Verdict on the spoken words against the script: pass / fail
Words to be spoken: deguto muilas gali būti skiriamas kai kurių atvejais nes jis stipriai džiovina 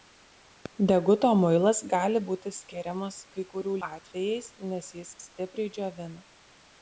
pass